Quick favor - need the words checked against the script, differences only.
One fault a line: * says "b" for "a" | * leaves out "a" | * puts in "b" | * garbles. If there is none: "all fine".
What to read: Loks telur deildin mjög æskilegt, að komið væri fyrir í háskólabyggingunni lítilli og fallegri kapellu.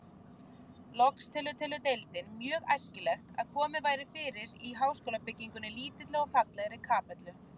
* puts in "telur"